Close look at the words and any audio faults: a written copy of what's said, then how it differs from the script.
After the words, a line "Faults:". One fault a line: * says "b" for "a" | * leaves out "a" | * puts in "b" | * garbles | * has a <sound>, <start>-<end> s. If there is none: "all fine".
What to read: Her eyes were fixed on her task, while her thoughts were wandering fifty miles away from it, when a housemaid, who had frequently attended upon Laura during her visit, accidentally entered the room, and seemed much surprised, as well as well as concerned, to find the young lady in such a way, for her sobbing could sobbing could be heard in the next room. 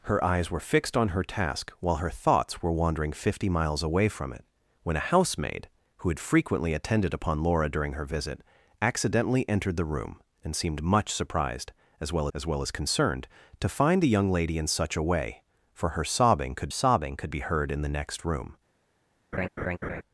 Her eyes were fixed on her task, while her thoughts were wandering fifty miles away from it, when a housemaid, who had frequently attended upon Laura during her visit, accidentally entered the room, and seemed much surprised, as well as well as concerned, to find the young lady in such a way, for her sobbing could sobbing could be heard in the next room.
Faults:
* has a laugh, 19.3-20.0 s